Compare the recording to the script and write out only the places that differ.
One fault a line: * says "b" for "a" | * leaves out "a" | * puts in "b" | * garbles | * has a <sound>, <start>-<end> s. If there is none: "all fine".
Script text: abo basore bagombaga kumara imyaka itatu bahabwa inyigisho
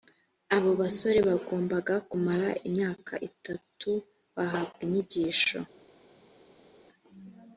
all fine